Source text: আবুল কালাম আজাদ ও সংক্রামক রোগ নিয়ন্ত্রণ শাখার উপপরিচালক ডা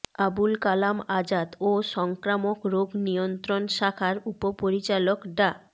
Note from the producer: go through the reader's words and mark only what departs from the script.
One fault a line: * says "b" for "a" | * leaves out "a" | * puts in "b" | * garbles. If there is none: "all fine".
all fine